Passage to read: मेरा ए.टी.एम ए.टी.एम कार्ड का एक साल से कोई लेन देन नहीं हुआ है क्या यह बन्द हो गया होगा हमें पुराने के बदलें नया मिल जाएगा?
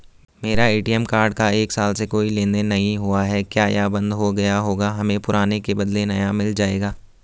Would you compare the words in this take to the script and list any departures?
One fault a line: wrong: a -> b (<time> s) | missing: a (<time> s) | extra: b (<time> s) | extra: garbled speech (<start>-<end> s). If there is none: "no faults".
missing: ए.टी.एम (1.0 s)